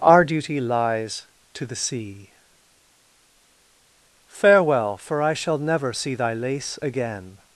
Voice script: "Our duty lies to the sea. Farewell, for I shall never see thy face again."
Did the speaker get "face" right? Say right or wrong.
wrong